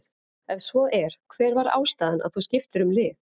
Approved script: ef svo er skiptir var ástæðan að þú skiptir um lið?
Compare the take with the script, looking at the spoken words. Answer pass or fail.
fail